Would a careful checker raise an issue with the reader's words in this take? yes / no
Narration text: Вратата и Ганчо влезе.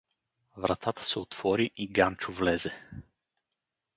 yes